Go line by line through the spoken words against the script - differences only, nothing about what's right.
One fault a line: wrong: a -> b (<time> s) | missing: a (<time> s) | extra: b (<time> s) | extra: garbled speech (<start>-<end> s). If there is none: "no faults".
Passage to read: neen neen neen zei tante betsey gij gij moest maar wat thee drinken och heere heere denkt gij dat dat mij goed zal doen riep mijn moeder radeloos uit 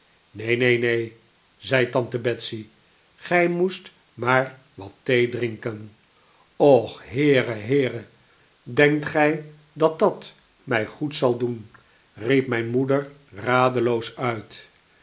missing: gij (3.5 s)